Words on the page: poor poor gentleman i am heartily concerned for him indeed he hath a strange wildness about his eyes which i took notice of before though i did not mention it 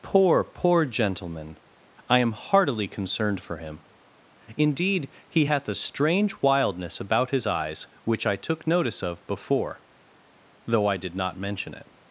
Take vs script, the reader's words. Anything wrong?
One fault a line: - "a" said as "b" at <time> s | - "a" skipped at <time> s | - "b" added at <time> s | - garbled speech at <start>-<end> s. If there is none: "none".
none